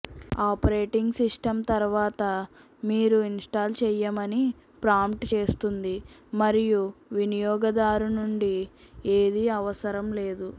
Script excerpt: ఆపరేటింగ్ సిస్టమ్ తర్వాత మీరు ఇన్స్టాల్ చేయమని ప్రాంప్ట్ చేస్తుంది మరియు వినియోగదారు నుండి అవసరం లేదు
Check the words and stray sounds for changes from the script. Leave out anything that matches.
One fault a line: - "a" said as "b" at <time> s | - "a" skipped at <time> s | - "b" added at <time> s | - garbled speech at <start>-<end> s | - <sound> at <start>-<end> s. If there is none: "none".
- "ఏదీ" added at 9.2 s